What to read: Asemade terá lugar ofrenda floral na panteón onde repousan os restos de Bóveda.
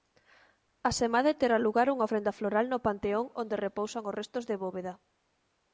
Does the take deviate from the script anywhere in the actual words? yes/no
yes